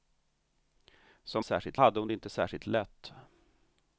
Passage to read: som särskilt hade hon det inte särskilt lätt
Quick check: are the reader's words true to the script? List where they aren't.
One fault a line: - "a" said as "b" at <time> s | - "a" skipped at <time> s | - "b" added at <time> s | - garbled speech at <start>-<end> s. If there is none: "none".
none